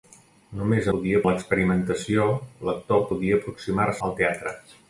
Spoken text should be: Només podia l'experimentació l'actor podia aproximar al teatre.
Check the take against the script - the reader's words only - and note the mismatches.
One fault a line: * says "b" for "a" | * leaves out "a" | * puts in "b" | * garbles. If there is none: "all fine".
all fine